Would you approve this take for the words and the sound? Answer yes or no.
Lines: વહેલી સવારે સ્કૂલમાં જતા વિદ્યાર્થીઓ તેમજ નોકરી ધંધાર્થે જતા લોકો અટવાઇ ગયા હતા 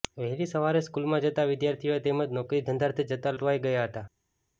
no